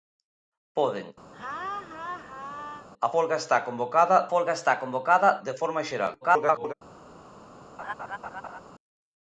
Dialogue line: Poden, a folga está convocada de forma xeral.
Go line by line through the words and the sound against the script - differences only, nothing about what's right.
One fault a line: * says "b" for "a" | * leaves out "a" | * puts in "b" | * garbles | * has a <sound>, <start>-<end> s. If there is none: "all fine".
* has a laugh, 1.3-2.9 s
* puts in "folga está convocada"
* garbles
* has a laugh, 7.8-8.6 s